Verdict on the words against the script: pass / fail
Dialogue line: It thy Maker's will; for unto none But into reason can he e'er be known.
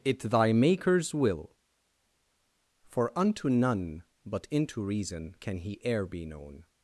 pass